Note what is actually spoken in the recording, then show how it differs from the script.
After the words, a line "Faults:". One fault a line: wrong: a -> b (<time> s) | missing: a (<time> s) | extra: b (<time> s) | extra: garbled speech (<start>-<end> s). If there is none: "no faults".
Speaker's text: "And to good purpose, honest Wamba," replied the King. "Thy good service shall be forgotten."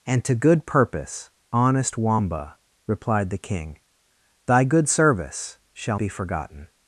"And to good purpose, honest Wamba," replied the King. "Thy good service shall be forgotten."
Faults:
no faults